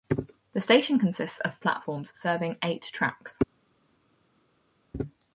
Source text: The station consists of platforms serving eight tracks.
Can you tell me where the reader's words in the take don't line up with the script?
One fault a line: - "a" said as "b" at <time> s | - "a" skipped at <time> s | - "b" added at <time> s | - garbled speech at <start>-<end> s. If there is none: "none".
none